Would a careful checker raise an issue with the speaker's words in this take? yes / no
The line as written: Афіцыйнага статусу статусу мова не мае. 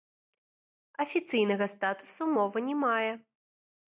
yes